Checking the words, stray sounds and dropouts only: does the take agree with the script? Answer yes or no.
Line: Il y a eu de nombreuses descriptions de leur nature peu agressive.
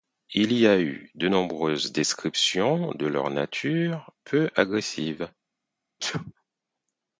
no